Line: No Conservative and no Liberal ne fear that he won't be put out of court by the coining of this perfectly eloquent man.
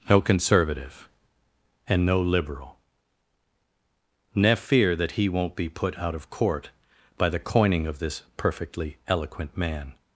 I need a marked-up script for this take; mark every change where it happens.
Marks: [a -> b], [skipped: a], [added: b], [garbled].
No Conservative and no Liberal ne fear that he won't be put out of court by the coining of this perfectly eloquent man.